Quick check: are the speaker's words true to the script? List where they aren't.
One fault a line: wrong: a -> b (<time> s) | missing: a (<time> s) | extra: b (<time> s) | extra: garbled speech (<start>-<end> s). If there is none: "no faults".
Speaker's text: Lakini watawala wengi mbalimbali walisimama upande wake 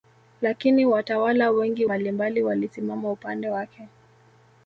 no faults